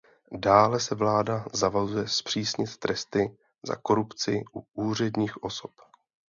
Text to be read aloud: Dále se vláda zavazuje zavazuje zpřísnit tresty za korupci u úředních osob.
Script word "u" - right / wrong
right